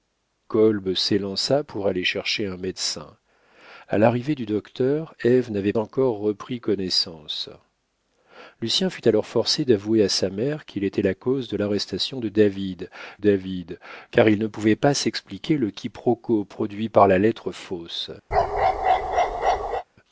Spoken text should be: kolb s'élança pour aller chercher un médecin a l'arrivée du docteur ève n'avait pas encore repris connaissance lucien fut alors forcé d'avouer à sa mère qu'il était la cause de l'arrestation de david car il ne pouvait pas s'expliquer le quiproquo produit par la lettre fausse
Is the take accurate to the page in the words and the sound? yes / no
no